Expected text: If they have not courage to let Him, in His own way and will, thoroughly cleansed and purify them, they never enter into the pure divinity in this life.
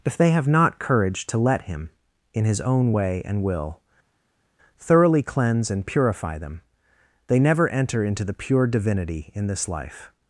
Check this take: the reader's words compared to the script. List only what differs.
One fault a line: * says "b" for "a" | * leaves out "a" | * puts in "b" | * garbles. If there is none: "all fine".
* says "cleanse" for "cleansed"